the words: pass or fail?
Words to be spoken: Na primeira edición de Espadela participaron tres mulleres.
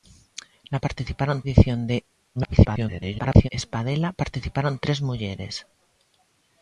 fail